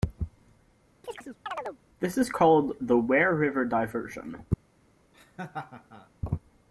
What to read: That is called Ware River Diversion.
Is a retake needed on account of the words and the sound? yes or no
yes